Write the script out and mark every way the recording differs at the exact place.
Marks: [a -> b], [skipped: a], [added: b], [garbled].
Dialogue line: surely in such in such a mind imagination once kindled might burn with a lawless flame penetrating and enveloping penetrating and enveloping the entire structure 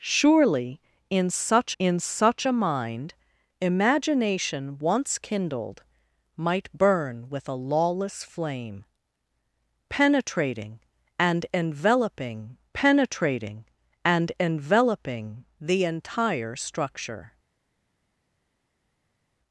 surely in such in such a mind imagination once kindled might burn with a lawless flame penetrating and enveloping penetrating and enveloping the entire structure